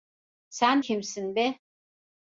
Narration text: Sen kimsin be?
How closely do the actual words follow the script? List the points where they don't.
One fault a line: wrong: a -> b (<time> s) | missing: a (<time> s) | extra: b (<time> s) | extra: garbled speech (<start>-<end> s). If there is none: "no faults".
no faults